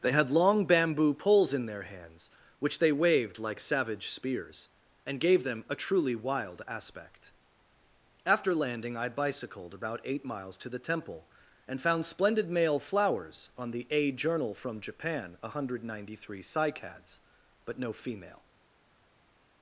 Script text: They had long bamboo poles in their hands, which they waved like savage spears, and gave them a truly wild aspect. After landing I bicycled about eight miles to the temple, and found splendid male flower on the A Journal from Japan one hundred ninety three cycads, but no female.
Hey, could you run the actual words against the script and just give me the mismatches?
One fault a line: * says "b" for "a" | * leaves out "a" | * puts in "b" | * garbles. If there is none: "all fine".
* says "flowers" for "flower"